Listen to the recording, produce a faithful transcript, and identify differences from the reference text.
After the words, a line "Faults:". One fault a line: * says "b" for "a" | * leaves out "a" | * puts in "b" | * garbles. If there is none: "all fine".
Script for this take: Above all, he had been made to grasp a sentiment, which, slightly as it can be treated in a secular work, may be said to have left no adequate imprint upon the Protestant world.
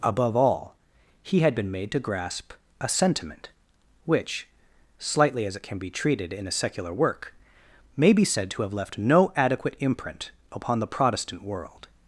Above all, he had been made to grasp a sentiment, which, slightly as it can be treated in a secular work, may be said to have left no adequate imprint upon the Protestant world.
Faults:
all fine